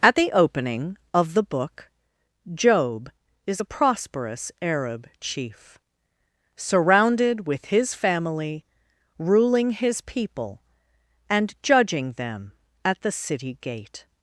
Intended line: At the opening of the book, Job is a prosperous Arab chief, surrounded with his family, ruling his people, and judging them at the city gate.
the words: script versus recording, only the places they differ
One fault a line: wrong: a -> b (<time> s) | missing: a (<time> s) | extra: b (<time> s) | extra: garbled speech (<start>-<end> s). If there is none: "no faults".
no faults